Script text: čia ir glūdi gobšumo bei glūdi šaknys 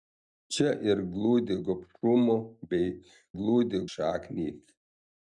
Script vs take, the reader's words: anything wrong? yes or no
no